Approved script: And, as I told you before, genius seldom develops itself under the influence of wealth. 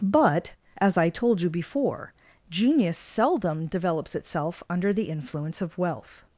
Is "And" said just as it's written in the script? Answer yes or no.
no